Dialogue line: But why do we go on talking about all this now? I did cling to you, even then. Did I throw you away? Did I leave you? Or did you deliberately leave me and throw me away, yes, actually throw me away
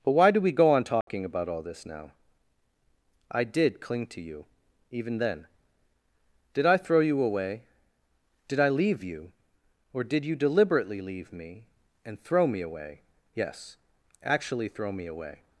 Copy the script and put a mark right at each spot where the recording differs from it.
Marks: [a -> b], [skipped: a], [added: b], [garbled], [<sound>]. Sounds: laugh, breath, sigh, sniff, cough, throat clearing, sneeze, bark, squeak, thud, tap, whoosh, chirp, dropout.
But why do we go on talking [dropout] about all this now? I did cling to you, even then. Did I throw you away? Did I leave you? Or did you deliberately leave me and throw me away, yes, actually throw me away